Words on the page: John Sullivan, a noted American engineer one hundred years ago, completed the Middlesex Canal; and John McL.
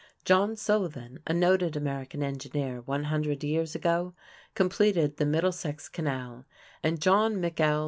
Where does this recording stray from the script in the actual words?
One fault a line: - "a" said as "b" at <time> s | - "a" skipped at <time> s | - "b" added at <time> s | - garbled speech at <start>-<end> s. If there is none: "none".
none